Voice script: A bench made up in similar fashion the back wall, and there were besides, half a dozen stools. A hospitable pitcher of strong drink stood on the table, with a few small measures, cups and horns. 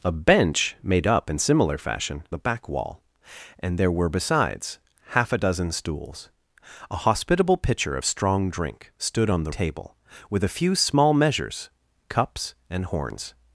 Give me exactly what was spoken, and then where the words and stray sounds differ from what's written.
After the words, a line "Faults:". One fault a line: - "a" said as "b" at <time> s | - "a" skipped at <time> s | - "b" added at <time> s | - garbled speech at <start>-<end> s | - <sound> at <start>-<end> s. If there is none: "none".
A bench made up in similar fashion the back wall, and there were besides, half a dozen stools. A hospitable pitcher of strong drink stood on the table, with a few small measures, cups and horns.
Faults:
none